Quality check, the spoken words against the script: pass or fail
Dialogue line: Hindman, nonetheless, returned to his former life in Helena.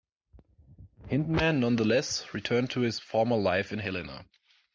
pass